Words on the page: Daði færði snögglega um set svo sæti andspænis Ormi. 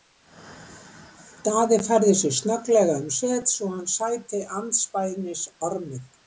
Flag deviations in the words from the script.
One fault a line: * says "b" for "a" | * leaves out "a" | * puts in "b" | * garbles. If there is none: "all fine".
* puts in "sig"
* puts in "hann"